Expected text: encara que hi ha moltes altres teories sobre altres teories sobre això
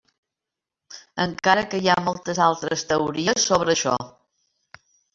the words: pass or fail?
fail